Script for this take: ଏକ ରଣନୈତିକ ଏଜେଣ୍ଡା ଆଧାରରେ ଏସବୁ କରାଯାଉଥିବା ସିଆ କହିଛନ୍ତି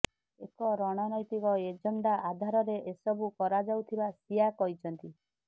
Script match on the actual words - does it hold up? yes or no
yes